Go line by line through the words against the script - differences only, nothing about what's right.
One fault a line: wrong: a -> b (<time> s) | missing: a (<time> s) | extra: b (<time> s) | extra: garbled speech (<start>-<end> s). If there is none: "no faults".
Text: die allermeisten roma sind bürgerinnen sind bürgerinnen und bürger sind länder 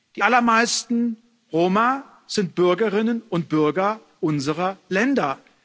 missing: sind bürgerinnen (3.2 s)
wrong: sind -> unserer (4.2 s)